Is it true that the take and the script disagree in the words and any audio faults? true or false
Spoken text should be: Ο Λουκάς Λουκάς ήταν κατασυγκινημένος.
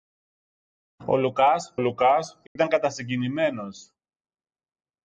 true